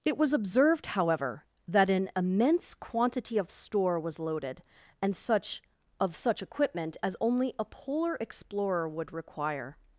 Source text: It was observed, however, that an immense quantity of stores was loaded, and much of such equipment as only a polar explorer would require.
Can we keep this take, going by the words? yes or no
no